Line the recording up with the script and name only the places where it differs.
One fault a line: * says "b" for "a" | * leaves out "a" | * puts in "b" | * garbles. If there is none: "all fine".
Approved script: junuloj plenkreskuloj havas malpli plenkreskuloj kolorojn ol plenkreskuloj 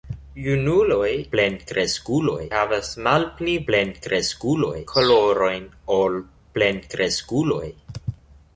all fine